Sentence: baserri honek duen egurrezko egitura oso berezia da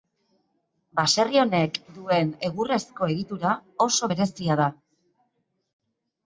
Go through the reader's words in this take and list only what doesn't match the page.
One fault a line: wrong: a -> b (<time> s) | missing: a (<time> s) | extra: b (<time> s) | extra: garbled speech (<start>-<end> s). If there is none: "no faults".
no faults